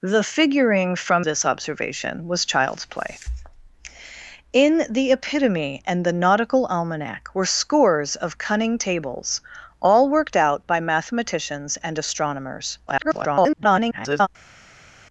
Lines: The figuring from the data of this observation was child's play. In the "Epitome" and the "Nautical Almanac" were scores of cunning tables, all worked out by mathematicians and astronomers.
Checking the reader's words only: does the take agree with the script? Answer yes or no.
no